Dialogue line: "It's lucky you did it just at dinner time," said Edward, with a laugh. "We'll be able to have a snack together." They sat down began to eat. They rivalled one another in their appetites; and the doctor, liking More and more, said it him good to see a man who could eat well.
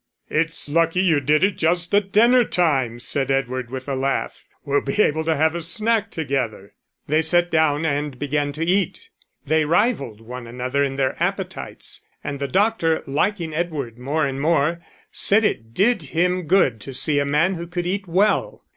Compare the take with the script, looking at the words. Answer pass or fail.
fail